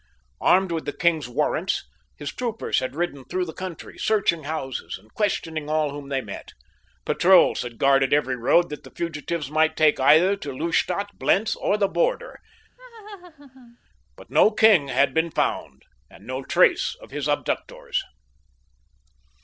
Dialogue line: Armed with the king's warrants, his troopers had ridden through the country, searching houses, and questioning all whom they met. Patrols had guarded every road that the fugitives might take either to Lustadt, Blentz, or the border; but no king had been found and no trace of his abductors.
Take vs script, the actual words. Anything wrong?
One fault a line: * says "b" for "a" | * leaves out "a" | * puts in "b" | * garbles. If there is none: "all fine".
all fine